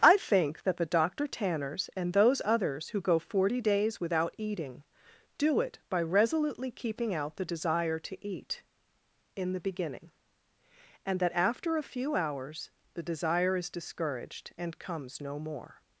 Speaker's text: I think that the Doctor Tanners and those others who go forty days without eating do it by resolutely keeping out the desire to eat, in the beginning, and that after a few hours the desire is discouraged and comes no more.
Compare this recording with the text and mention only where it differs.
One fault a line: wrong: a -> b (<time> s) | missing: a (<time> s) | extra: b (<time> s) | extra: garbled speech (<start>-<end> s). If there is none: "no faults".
no faults